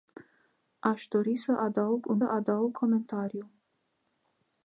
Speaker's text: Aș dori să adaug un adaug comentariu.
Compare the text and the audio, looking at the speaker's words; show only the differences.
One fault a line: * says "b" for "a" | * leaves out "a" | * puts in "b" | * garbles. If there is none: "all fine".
all fine